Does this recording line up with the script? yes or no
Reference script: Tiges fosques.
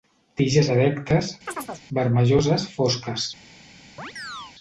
no